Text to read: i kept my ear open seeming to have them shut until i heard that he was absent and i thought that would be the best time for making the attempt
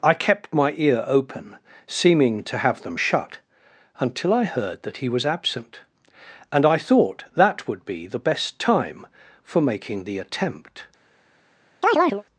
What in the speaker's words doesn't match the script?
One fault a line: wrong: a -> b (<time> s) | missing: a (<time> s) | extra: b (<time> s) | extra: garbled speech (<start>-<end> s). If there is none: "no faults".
no faults